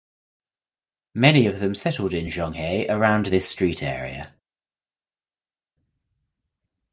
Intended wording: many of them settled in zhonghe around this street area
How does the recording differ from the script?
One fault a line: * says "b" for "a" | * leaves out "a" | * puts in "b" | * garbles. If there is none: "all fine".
all fine